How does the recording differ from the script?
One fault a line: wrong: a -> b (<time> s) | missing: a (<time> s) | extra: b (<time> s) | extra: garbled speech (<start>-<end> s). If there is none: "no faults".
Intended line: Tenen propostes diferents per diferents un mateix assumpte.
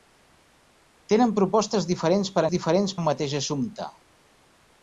no faults